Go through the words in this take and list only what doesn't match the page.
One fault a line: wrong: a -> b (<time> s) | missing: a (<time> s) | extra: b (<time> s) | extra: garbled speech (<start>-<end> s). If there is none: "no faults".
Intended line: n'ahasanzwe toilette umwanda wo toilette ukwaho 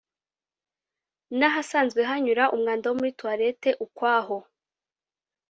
wrong: toilette -> hanyura (2.1 s)
extra: muri (3.0 s)